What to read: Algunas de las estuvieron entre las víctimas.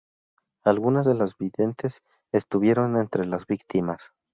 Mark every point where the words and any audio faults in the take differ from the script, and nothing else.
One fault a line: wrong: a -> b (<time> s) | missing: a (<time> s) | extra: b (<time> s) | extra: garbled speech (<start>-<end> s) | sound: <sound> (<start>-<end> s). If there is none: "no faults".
extra: videntes (1.4 s)